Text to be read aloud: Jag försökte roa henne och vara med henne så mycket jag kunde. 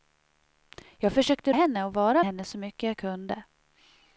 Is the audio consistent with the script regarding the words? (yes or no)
no